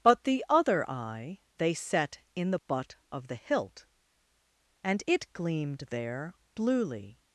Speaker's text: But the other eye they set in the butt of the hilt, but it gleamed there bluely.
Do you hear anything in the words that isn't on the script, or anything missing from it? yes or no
yes